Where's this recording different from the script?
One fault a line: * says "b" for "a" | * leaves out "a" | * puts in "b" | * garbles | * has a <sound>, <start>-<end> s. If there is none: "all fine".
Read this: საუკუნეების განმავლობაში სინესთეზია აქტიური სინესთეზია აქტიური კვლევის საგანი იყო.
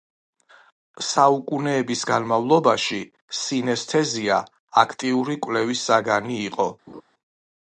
* leaves out "სინესთეზია აქტიური"
* has a laugh, 6.9-7.0 s